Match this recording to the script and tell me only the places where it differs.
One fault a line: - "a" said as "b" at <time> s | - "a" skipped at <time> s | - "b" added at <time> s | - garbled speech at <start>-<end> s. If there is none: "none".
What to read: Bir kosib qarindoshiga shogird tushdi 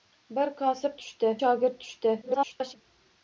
- "qarindoshiga" said as "tushdi" at 1.0 s
- garbled speech at 2.2-2.8 s